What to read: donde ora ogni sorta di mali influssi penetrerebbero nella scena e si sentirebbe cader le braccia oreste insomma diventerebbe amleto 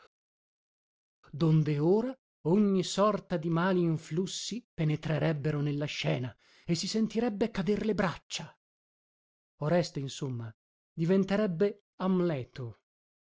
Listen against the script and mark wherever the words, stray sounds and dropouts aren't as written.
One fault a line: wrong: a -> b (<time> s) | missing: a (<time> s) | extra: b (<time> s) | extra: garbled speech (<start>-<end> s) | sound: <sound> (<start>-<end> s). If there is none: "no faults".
no faults